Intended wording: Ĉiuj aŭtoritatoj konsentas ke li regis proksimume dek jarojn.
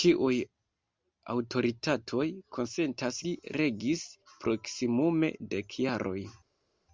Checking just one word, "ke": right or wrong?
wrong